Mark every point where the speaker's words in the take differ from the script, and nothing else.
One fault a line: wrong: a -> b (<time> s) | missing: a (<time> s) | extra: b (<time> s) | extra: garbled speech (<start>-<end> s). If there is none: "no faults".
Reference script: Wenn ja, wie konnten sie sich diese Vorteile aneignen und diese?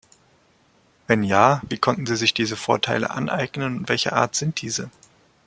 extra: welcher Art sind (3.9 s)